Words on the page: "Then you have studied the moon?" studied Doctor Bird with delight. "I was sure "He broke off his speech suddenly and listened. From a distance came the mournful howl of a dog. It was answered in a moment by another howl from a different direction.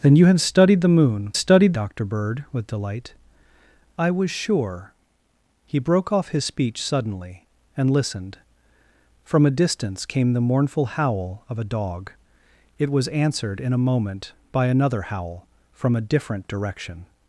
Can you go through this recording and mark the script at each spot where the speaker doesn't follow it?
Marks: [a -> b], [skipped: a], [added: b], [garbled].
"Then you have studied the moon?" studied Doctor Bird with delight. "I was sure "He broke off his speech suddenly and listened. From a distance came the mournful howl of a dog. It was answered in a moment by another howl from a different direction.